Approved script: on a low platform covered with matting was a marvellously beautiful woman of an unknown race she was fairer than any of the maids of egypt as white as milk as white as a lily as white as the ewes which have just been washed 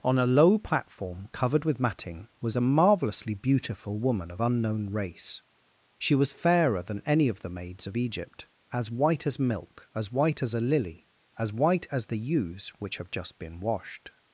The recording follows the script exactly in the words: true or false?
false